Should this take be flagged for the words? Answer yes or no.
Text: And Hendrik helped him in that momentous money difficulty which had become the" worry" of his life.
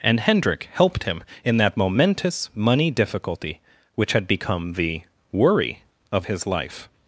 no